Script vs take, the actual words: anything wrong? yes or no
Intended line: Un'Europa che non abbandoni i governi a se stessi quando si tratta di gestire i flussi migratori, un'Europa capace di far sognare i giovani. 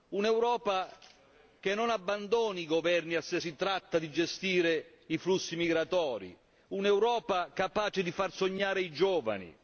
yes